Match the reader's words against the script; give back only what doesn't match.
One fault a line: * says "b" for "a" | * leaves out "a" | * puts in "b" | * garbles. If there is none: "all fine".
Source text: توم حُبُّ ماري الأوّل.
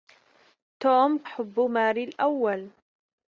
all fine